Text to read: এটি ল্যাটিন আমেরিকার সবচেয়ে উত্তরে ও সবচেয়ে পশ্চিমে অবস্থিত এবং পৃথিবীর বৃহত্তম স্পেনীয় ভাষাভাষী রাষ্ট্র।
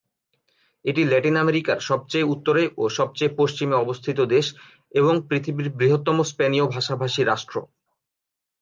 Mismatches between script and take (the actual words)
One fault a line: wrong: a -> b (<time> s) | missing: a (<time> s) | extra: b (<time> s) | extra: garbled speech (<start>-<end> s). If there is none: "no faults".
extra: দেশ (4.3 s)